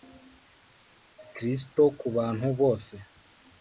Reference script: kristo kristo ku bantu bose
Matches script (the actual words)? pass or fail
fail